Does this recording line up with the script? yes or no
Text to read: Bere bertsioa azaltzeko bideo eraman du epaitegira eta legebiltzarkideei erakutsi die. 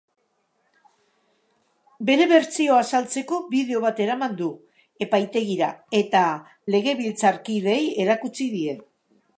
no